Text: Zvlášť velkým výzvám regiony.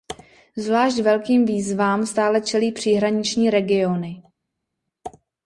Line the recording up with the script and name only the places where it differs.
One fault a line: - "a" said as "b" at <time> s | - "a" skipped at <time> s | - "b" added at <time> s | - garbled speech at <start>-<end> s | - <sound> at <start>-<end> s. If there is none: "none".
- "stále čelí příhraniční" added at 2.0 s